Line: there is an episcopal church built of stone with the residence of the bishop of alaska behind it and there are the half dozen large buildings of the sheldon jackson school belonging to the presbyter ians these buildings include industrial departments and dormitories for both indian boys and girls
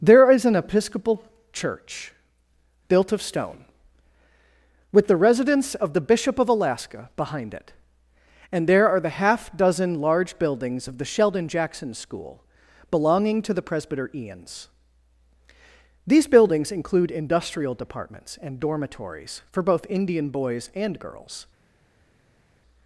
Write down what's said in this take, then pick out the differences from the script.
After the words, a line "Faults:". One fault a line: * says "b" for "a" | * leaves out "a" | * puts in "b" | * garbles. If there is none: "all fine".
there is an episcopal church built of stone with the residence of the bishop of alaska behind it and there are the half dozen large buildings of the sheldon jackson school belonging to the presbyter ians these buildings include industrial departments and dormitories for both indian boys and girls
Faults:
all fine